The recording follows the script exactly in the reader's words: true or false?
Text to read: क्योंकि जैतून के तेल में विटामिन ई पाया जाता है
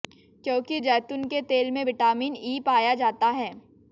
true